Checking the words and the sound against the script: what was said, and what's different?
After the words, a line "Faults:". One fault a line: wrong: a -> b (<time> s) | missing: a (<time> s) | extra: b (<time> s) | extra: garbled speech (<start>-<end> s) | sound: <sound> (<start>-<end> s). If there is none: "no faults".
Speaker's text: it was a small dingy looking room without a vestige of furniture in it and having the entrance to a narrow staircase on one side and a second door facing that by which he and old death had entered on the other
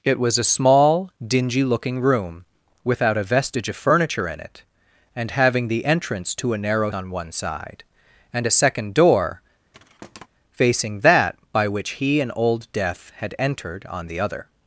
it was a small dingy looking room without a vestige of furniture in it and having the entrance to a narrow on one side and a second door facing that by which he and old death had entered on the other
Faults:
missing: staircase (6.9 s)
sound: thud (9.7-10.3 s)